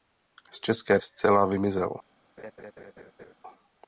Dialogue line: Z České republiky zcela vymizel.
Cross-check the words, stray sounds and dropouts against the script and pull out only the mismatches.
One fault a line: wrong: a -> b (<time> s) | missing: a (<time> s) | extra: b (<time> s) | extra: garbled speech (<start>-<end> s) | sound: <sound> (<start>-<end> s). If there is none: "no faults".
missing: republiky (1.0 s)
sound: laugh (2.4-3.3 s)